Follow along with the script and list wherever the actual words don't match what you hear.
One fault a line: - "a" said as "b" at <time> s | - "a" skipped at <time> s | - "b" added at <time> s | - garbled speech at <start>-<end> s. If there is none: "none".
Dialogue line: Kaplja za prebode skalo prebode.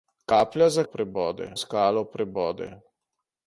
none